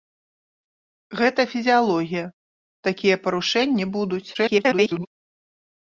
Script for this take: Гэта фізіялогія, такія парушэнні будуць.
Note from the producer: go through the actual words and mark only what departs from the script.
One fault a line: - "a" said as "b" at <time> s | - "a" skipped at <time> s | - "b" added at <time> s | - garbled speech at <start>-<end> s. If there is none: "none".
- garbled speech at 4.3-5.1 s